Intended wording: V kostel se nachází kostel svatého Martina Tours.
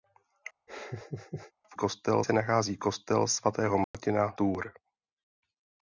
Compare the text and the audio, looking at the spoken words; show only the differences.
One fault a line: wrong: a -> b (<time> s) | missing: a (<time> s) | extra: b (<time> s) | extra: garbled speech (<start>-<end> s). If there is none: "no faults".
no faults